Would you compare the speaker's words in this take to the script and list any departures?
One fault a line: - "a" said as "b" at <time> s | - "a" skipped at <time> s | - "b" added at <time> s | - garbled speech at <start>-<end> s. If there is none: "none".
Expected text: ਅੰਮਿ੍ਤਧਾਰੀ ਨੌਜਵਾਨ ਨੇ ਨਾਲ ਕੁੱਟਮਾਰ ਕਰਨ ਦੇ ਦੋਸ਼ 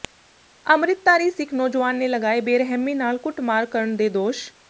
- "ਸਿੱਖ" added at 1.3 s
- "ਲਗਾਏ ਬੇਰਹਿਮੀ" added at 2.1 s